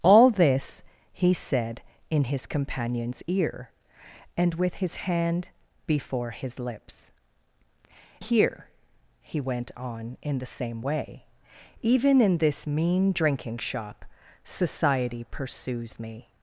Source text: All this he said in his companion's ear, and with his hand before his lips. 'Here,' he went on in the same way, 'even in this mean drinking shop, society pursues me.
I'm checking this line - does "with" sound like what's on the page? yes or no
yes